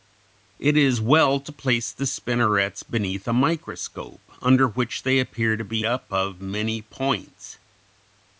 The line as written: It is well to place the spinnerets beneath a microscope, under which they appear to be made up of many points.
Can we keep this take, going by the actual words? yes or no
no